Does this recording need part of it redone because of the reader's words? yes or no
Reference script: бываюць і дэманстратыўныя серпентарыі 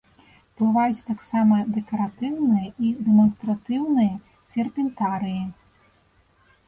yes